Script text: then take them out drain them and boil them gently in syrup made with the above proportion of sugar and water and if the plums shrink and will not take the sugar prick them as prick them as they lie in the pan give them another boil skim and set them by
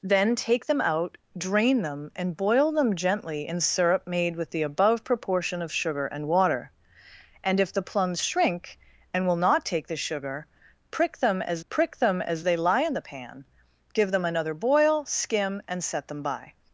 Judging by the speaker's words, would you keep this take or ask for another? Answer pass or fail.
pass